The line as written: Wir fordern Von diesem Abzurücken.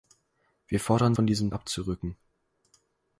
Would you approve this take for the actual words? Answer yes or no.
yes